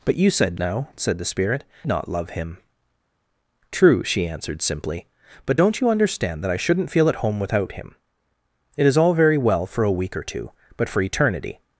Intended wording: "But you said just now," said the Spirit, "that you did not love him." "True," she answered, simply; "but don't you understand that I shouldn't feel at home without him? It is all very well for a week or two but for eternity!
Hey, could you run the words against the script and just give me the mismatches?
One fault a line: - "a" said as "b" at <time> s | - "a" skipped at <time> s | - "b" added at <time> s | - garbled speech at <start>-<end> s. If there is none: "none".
- "just" skipped at 0.6 s
- "that you did" skipped at 1.6 s